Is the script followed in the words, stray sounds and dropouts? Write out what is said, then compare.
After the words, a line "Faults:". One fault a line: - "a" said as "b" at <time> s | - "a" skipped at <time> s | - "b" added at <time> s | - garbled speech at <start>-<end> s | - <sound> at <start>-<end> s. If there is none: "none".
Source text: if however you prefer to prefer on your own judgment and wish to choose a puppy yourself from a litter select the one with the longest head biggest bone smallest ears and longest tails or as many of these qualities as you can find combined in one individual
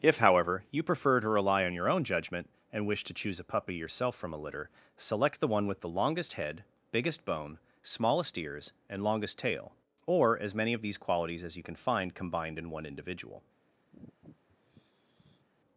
if however you prefer to rely on your own judgment and wish to choose a puppy yourself from a litter select the one with the longest head biggest bone smallest ears and longest tail or as many of these qualities as you can find combined in one individual
Faults:
- "prefer" said as "rely" at 1.3 s
- "tails" said as "tail" at 9.4 s
- sigh at 13.9-15.5 s